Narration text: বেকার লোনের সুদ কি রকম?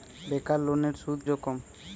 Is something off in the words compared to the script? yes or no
yes